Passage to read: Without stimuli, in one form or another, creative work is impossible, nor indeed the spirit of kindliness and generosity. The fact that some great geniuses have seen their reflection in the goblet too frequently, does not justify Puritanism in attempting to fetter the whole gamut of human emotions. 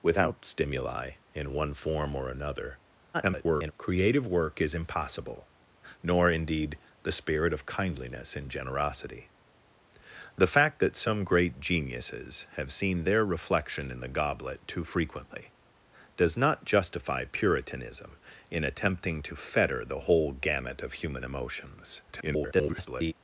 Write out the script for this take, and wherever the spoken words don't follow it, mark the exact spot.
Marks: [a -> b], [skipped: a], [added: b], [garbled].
Without stimuli, in one form or another, [garbled] creative work is impossible, nor indeed the spirit of kindliness and generosity. The fact that some great geniuses have seen their reflection in the goblet too frequently, does not justify Puritanism in attempting to fetter the whole gamut of human emotions. [garbled]